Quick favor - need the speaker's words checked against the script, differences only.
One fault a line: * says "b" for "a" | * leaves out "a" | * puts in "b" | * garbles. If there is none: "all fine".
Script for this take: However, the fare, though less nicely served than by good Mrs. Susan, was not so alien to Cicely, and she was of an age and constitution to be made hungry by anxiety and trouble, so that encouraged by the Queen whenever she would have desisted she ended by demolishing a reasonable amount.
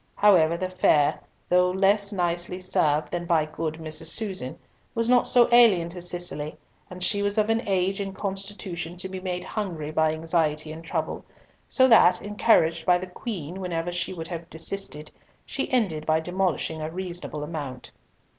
all fine